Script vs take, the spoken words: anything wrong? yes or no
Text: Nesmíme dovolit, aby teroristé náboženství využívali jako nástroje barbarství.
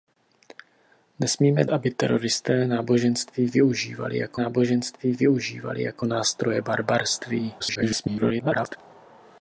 yes